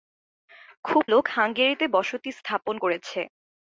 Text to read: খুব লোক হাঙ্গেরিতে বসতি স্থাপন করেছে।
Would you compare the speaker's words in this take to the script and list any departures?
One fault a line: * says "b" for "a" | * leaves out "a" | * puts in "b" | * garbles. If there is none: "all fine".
all fine